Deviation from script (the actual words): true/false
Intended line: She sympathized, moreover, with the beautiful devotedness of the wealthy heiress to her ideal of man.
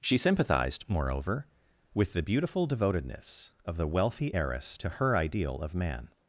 false